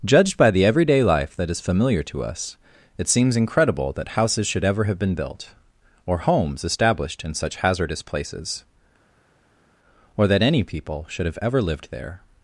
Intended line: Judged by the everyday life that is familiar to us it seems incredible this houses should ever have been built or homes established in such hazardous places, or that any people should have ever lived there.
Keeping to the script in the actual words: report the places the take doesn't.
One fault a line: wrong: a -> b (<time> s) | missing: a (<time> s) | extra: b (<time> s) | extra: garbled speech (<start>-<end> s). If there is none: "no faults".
wrong: this -> that (3.9 s)